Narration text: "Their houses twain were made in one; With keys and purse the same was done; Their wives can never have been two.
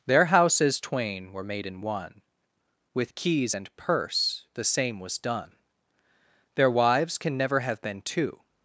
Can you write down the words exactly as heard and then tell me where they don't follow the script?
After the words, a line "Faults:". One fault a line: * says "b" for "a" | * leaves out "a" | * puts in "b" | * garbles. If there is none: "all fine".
"Their houses twain were made in one; With keys and purse the same was done; Their wives can never have been two.
Faults:
all fine